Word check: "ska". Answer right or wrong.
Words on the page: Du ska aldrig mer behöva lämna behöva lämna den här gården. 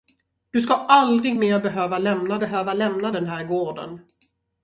right